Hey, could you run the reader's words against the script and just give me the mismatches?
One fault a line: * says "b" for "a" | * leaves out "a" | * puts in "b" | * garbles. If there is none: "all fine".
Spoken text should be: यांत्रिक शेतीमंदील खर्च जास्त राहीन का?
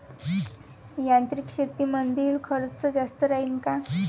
all fine